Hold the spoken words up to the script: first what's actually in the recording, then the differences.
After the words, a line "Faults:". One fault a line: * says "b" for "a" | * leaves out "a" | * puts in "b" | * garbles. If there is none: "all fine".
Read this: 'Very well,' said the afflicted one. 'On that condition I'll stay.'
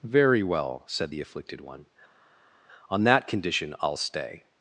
'Very well,' said the afflicted one. 'On that condition I'll stay.'
Faults:
all fine